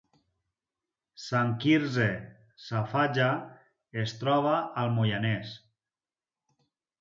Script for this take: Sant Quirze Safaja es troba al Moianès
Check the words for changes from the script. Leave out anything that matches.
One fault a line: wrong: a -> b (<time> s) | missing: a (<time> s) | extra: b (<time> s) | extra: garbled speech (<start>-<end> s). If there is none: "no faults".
no faults